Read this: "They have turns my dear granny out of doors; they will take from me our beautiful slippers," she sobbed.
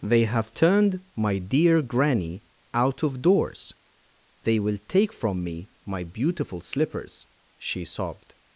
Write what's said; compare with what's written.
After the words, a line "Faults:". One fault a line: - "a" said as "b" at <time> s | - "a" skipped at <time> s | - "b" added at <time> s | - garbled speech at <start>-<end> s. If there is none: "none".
"They have turned my dear granny out of doors; they will take from me my beautiful slippers," she sobbed.
Faults:
- "turns" said as "turned" at 0.6 s
- "our" said as "my" at 5.8 s